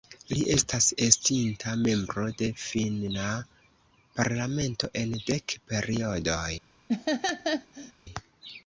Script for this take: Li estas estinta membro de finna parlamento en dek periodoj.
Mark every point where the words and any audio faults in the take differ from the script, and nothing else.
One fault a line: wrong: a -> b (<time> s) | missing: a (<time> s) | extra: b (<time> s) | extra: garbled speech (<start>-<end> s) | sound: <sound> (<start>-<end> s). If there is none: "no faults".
sound: laugh (6.9-7.9 s)